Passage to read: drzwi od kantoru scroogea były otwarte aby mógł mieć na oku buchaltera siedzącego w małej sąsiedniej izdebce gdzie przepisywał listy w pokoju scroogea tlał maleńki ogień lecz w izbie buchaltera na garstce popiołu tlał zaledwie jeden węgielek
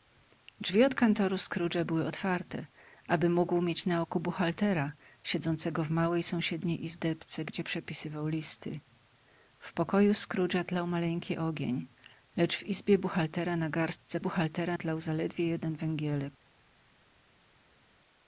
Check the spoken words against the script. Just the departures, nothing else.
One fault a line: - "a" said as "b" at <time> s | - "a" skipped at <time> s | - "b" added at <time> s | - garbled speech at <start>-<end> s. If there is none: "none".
- "popiołu" said as "buchaltera" at 14.2 s